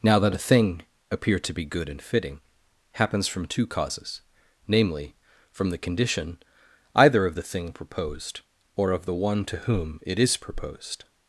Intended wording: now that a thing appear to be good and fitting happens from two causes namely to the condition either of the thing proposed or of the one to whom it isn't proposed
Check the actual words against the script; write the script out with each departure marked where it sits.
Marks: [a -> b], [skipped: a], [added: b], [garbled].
now that a thing appear to be good and fitting happens from two causes namely [to -> from] the condition either of the thing proposed or of the one to whom it [isn't -> is] proposed